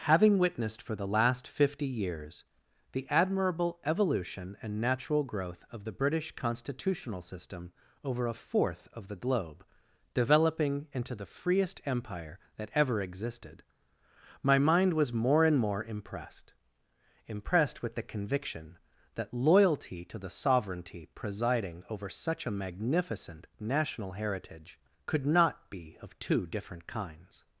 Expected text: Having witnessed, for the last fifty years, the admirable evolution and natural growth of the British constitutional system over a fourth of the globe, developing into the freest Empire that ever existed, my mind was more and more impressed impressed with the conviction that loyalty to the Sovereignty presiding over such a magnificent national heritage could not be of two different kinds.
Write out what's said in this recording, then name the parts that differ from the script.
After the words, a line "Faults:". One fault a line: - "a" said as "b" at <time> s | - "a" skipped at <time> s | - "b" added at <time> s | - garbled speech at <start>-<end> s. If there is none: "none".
Having witnessed, for the last fifty years, the admirable evolution and natural growth of the British constitutional system over a fourth of the globe, developing into the freest Empire that ever existed, my mind was more and more impressed impressed with the conviction that loyalty to the Sovereignty presiding over such a magnificent national heritage could not be of two different kinds.
Faults:
none